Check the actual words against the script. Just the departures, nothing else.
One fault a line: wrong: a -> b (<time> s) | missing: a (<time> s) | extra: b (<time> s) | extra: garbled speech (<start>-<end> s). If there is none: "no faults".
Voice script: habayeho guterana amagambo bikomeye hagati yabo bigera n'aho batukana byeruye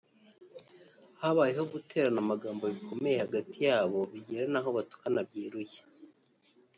no faults